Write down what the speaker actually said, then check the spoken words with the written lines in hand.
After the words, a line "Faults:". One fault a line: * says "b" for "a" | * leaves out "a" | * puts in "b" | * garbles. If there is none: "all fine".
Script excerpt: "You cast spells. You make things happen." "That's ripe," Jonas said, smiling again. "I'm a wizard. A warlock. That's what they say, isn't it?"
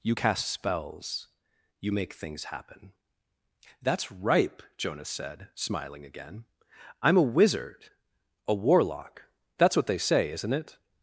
"You cast spells. You make things happen." "That's ripe," Jonas said, smiling again. "I'm a wizard. A warlock. That's what they say, isn't it?"
Faults:
all fine